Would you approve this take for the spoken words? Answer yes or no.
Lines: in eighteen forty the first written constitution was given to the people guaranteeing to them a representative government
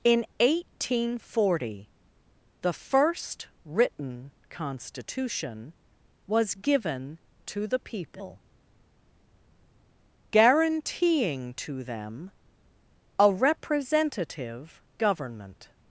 yes